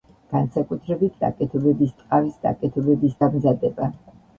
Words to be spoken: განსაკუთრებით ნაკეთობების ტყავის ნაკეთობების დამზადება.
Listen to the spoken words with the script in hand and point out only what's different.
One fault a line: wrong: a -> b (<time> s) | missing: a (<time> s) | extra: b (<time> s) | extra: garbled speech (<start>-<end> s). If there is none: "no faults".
no faults